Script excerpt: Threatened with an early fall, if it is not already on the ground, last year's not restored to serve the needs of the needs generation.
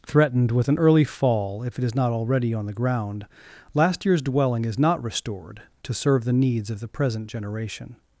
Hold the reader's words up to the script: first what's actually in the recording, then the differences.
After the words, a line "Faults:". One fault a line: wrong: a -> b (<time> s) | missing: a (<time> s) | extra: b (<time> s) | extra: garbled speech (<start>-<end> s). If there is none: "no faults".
Threatened with an early fall, if it is not already on the ground, last year's dwelling is not restored to serve the needs of the present generation.
Faults:
extra: dwelling is (4.2 s)
wrong: needs -> present (6.9 s)